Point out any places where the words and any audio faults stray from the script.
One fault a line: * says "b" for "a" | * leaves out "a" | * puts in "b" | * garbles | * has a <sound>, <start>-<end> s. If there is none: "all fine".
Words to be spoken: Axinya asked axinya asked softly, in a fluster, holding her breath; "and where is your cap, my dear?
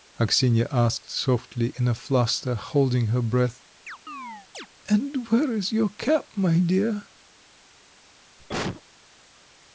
* leaves out "axinya asked"
* has a chirp, 3.9-4.7 s
* has a cough, 8.4-8.8 s